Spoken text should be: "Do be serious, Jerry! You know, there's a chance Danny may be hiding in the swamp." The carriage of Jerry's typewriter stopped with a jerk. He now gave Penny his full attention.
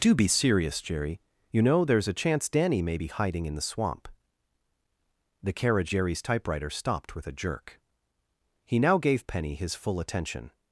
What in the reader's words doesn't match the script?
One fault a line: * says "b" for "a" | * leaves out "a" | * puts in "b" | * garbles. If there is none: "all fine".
* leaves out "of"